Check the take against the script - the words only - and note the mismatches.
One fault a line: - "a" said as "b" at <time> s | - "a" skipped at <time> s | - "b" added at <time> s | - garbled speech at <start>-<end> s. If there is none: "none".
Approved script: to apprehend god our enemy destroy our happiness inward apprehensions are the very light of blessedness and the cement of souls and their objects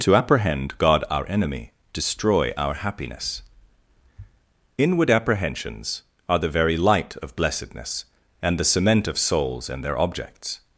none